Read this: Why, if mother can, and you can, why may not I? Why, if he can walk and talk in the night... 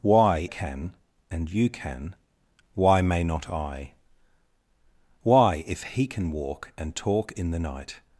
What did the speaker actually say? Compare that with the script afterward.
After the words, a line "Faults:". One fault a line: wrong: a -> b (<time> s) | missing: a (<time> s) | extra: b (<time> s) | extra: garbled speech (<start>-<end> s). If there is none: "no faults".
Why, can, and you can, why may not I? Why, if he can walk and talk in the night...
Faults:
missing: if mother (0.5 s)